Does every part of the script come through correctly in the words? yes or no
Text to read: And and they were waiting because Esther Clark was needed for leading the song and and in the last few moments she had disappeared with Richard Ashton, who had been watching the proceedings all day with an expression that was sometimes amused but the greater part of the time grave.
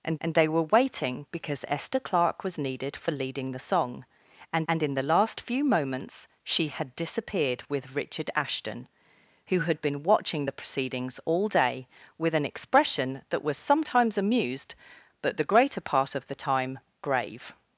yes